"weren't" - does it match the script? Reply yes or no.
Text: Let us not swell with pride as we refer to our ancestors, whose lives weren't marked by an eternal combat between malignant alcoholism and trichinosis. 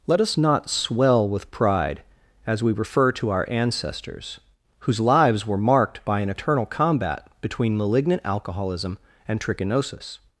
no